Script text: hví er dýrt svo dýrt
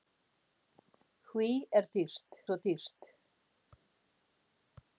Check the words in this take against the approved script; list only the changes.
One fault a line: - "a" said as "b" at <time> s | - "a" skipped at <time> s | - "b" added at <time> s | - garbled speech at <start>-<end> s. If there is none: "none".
none